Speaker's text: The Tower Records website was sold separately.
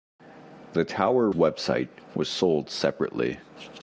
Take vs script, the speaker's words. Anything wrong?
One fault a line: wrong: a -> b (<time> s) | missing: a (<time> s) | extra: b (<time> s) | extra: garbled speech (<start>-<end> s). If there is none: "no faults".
missing: Records (1.3 s)